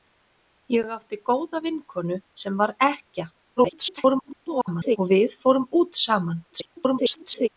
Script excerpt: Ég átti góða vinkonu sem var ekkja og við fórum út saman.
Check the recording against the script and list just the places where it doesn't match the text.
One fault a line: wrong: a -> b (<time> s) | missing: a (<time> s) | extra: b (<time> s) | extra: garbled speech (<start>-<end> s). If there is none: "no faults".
extra: garbled speech (3.6-5.0 s)
extra: garbled speech (6.5-7.5 s)